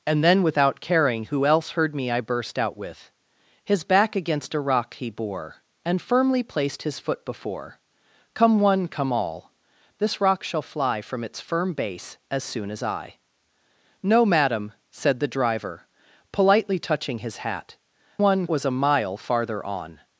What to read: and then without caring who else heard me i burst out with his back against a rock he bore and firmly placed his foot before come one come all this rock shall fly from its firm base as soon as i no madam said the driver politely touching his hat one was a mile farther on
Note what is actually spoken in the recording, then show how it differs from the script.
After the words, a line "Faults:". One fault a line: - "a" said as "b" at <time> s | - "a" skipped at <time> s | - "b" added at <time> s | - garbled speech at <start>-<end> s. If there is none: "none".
and then without caring who else heard me i burst out with his back against a rock he bore and firmly placed his foot before come one come all this rock shall fly from its firm base as soon as i no madam said the driver politely touching his hat one was a mile farther on
Faults:
none